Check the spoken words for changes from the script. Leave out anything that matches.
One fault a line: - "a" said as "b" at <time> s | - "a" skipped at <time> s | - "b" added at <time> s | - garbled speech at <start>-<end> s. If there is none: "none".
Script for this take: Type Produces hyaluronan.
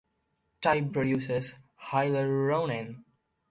none